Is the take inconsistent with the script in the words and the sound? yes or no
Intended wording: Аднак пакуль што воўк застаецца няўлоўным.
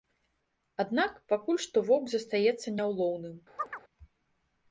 yes